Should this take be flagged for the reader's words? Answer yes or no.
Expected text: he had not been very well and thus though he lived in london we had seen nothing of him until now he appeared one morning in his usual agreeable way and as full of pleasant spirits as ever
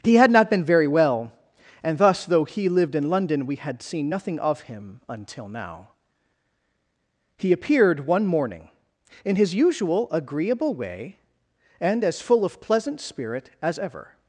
yes